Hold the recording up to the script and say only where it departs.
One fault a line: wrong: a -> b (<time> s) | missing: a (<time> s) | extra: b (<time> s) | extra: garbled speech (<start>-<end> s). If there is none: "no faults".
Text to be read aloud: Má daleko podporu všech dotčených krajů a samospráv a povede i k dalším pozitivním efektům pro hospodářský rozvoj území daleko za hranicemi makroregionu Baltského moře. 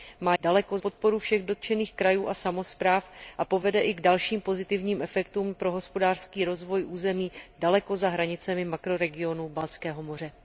no faults